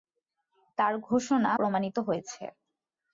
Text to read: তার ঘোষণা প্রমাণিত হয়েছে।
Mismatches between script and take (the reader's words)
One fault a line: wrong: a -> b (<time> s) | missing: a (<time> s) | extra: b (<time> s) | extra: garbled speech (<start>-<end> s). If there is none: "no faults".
no faults